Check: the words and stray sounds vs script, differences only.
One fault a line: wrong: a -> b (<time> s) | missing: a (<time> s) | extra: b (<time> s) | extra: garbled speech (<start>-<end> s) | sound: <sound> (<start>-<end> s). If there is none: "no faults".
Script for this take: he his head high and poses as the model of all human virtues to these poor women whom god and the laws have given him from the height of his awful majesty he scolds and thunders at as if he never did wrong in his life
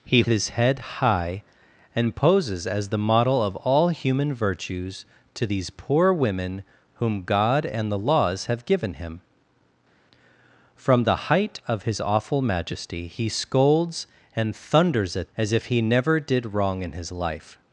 no faults